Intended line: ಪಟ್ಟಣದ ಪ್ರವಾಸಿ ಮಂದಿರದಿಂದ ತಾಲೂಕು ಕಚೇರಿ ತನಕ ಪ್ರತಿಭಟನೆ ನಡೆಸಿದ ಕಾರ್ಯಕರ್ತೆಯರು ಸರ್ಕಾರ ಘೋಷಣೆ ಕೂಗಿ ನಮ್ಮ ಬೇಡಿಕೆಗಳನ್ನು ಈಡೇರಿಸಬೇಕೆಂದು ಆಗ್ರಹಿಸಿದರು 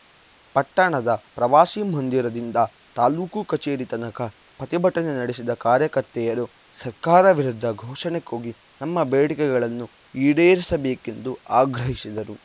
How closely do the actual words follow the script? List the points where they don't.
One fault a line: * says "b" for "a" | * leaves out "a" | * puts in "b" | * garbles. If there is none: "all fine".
* puts in "ವಿರುದ್ಧ"